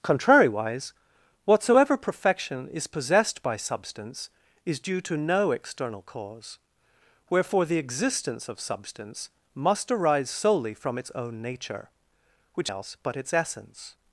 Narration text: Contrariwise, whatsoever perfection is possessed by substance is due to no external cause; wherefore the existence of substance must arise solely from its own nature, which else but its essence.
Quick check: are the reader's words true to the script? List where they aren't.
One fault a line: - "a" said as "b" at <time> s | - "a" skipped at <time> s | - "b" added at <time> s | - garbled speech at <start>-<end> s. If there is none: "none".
none